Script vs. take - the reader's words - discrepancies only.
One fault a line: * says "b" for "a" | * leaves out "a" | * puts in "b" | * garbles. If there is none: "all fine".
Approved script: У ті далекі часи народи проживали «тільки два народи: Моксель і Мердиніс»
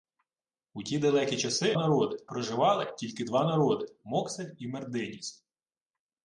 all fine